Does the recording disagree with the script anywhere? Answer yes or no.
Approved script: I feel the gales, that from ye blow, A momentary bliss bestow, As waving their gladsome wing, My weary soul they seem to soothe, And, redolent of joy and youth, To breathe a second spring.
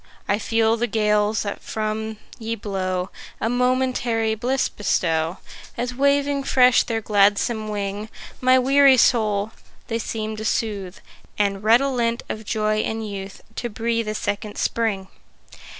yes